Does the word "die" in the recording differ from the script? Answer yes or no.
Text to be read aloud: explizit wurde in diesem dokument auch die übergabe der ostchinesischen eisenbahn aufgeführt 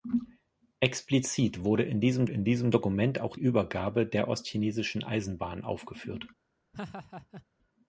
yes